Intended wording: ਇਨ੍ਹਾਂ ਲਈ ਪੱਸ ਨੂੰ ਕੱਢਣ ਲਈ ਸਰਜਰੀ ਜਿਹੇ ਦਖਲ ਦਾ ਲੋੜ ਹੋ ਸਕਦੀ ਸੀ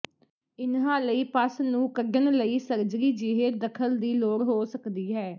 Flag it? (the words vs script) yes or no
yes